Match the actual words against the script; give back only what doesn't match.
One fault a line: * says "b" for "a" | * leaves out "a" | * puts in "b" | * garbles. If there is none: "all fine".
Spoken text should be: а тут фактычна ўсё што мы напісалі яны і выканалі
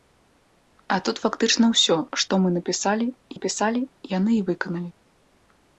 * puts in "напісалі"